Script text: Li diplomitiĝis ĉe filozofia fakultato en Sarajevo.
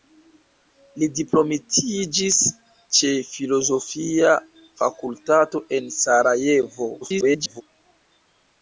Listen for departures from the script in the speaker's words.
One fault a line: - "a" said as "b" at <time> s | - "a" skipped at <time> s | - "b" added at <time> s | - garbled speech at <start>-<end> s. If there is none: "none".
- garbled speech at 7.0-7.6 s